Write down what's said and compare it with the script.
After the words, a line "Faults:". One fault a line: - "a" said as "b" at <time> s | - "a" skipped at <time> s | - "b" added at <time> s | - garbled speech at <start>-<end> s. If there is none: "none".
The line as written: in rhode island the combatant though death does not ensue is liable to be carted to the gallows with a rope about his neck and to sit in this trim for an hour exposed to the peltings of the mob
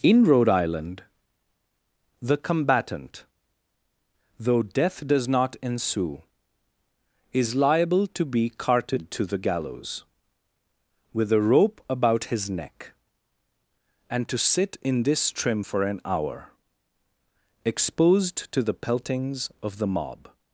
in rhode island the combatant though death does not ensue is liable to be carted to the gallows with a rope about his neck and to sit in this trim for an hour exposed to the peltings of the mob
Faults:
none